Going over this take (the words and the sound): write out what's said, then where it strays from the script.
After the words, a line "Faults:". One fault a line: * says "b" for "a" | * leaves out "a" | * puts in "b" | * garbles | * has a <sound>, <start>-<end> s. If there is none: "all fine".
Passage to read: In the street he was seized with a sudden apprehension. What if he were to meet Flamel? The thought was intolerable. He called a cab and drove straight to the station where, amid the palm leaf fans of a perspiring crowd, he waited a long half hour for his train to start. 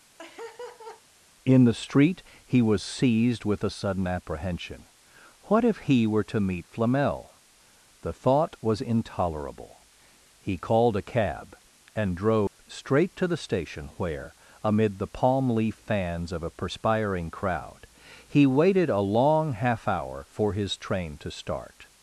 In the street he was seized with a sudden apprehension. What if he were to meet Flamel? The thought was intolerable. He called a cab and drove straight to the station where, amid the palm leaf fans of a perspiring crowd, he waited a long half hour for his train to start.
Faults:
* has a laugh, 0.2-1.0 s
* has a dropout, 12.5-12.6 s